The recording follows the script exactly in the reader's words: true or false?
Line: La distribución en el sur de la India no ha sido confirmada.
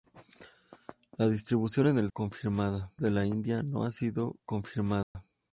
false